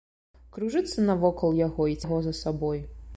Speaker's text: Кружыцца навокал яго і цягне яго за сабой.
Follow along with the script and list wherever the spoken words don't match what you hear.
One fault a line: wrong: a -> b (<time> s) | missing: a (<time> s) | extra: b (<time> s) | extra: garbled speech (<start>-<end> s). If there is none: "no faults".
missing: цягне (2.0 s)